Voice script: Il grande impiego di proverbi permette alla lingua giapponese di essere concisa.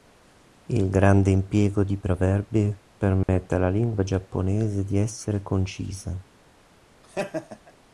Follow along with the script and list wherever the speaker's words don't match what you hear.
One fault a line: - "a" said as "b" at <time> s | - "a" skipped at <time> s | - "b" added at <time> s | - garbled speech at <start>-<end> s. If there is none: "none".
none